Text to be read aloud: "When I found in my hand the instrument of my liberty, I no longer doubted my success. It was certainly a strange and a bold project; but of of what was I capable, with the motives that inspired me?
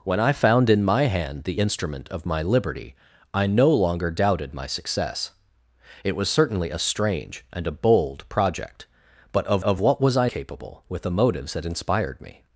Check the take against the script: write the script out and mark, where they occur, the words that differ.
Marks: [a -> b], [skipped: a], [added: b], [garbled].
"When I found in my hand the instrument of my liberty, I no longer doubted my success. It was certainly a strange and a bold project; but of of what was I capable, with the motives that inspired me?